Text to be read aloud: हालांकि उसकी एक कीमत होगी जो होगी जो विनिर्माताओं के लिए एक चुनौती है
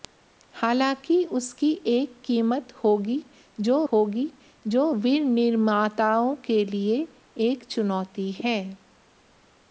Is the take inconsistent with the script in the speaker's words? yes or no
no